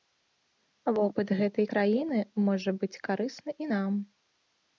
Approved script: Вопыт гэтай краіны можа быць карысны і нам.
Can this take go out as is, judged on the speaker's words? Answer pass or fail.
pass